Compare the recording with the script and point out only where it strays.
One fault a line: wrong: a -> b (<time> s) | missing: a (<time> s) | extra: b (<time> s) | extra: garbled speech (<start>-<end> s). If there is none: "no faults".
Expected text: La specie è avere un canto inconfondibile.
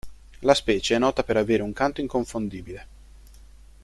extra: nota per (1.0 s)